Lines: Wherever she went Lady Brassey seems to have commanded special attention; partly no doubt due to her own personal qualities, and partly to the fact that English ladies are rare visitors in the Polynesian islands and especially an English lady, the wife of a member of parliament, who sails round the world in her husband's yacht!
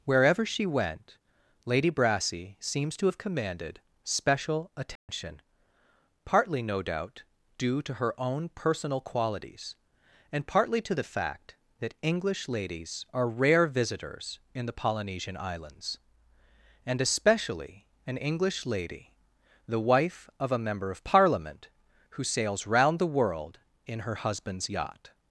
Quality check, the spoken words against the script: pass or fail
pass